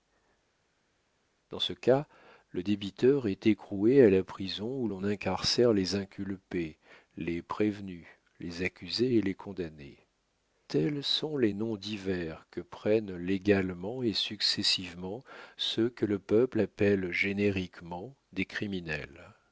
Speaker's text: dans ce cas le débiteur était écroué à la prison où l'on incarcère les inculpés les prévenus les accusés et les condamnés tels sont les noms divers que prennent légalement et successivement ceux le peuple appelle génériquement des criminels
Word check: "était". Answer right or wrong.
wrong